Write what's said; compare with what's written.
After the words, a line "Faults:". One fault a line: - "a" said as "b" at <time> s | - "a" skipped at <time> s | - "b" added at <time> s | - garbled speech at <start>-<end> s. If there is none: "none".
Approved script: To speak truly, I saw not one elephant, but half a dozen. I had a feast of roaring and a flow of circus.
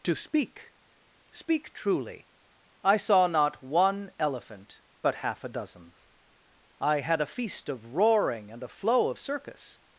To speak speak truly, I saw not one elephant, but half a dozen. I had a feast of roaring and a flow of circus.
Faults:
- "speak" added at 1.3 s